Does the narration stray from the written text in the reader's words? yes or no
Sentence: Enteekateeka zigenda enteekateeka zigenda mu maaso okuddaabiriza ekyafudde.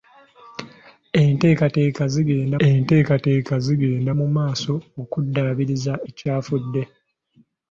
no